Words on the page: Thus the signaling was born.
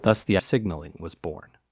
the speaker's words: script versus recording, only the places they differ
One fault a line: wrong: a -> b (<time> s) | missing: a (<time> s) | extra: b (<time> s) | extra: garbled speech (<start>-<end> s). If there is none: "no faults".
no faults